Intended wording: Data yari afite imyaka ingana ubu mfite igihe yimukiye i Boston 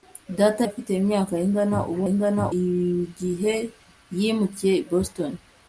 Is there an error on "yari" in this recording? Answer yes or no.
yes